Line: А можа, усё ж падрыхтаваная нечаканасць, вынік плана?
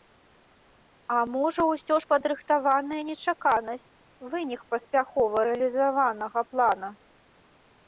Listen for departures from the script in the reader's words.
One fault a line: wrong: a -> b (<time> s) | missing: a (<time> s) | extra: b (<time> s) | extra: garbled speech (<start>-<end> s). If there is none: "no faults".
extra: паспяхова рэалізаванага (4.7 s)